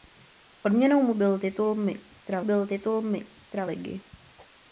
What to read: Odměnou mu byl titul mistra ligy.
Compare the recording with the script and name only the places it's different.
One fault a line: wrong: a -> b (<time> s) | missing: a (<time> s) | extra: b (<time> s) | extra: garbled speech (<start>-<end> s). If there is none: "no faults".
extra: byl titul mistra (2.4 s)